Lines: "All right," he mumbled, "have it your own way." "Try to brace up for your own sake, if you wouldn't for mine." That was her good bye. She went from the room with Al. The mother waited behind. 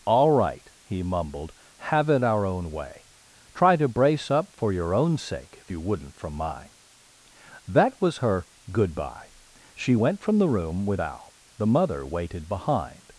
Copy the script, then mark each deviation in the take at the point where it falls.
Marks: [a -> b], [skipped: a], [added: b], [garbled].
"All right," he mumbled, "have it [your -> our] own way." "Try to brace up for your own sake, if you wouldn't [for -> from] mine." That was her good bye. She went from the room with Al. The mother waited behind.